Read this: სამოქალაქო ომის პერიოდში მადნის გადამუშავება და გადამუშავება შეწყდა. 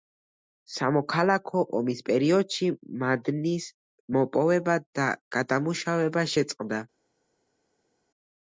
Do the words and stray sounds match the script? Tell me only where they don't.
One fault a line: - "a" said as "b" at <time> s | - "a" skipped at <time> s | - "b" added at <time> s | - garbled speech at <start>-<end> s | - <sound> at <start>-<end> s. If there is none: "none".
- "გადამუშავება" said as "მოპოვება" at 4.2 s